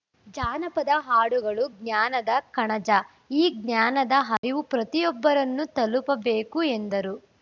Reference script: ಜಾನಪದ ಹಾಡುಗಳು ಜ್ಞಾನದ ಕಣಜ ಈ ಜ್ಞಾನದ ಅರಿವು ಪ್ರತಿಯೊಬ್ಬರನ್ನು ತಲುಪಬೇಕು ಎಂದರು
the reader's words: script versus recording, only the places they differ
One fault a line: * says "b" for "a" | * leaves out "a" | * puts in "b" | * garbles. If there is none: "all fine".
all fine